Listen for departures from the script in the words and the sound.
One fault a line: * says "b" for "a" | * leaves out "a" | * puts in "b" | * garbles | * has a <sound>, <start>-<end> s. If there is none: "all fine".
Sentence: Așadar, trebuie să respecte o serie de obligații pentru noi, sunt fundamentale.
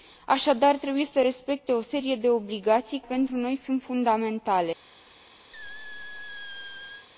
* has a squeak, 5.5-7.1 s